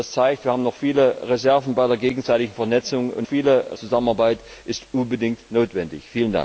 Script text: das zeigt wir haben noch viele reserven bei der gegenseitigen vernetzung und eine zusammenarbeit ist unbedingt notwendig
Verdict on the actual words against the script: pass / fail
fail